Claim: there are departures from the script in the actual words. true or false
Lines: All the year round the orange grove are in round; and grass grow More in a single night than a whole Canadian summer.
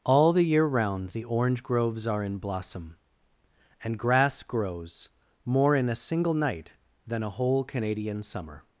true